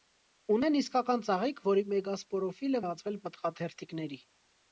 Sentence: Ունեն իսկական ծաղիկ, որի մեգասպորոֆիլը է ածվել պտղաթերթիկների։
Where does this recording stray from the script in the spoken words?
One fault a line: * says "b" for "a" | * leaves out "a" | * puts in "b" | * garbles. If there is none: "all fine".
all fine